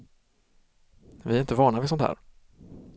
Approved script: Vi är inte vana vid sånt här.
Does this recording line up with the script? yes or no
yes